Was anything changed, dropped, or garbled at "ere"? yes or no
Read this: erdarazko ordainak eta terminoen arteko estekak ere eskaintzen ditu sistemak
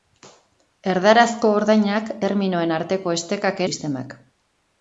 yes